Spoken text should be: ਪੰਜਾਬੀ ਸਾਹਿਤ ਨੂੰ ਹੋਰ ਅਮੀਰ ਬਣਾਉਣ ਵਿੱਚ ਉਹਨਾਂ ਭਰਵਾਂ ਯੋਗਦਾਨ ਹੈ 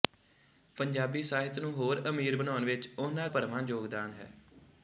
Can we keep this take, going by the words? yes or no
yes